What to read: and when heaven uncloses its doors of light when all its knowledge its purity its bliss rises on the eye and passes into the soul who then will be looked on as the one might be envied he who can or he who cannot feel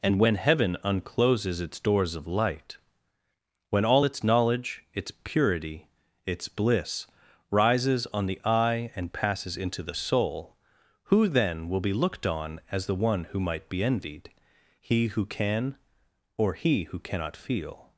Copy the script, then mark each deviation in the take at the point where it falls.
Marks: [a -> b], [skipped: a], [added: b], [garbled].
and when heaven uncloses its doors of light when all its knowledge its purity its bliss rises on the eye and passes into the soul who then will be looked on as the one [added: who] might be envied he who can or he who cannot feel